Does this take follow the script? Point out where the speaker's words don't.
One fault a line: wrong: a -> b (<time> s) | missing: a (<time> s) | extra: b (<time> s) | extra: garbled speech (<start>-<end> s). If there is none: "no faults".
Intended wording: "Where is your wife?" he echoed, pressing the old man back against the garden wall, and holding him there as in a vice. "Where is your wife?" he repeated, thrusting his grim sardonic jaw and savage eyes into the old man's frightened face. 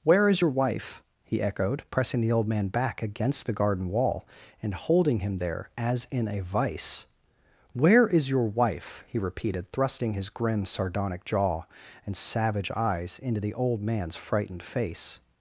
no faults